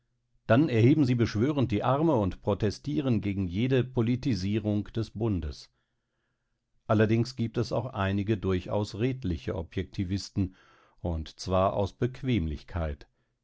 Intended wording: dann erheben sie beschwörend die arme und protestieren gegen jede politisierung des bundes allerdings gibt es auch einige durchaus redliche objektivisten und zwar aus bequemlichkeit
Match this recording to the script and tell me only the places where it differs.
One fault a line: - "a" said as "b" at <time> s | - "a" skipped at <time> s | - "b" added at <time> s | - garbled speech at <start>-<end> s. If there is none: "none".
none